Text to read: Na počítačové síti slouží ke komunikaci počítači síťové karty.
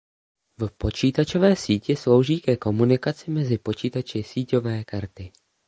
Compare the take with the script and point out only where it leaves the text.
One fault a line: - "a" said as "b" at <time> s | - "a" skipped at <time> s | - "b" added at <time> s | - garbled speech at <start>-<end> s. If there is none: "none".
- "Na" said as "V" at 0.6 s
- "mezi" added at 3.3 s